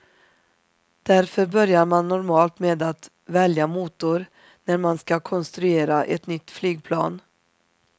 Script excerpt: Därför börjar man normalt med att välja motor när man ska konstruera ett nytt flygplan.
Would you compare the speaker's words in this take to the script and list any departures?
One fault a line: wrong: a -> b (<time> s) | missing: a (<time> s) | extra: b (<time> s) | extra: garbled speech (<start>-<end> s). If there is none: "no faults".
no faults